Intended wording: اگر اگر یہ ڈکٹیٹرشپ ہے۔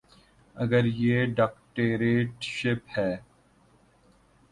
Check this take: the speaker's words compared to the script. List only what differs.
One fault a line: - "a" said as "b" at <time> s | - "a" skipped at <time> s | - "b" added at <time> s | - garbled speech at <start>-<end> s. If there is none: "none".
- "اگر" skipped at 0.8 s